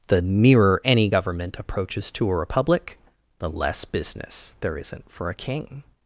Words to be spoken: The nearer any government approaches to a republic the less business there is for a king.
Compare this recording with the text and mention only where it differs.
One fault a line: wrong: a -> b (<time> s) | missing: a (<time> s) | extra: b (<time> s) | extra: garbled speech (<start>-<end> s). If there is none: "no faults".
wrong: is -> isn't (4.8 s)